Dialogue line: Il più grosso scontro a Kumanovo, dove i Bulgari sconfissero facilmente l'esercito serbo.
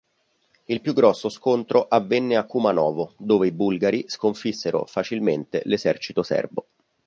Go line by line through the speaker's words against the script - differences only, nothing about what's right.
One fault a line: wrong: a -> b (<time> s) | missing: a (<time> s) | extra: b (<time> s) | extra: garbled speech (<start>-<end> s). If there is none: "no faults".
extra: avvenne (1.9 s)